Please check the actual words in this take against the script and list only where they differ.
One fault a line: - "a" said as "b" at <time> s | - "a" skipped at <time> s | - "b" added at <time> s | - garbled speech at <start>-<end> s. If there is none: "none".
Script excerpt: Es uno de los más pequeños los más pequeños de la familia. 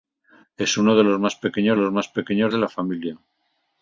none